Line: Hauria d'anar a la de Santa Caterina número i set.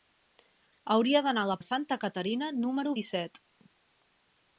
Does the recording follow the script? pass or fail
pass